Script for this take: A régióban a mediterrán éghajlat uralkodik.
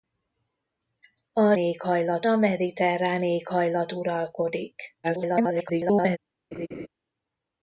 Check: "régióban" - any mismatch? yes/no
yes